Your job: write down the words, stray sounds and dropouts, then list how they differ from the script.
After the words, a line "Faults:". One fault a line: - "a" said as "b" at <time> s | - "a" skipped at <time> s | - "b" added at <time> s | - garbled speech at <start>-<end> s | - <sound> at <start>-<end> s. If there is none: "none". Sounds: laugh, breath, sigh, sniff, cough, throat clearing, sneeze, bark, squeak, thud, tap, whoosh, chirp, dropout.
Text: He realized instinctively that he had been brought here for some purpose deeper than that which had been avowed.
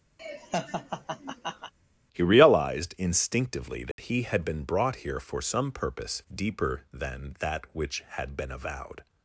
He realized instinctively that he had been brought here for some purpose deeper than that which had been avowed.
Faults:
- laugh at 0.2-1.7 s
- dropout at 3.9-4.0 s